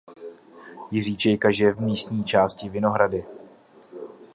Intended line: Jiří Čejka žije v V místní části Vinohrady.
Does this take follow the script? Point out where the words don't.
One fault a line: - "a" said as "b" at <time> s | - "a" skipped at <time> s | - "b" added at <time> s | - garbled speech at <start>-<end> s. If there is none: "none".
none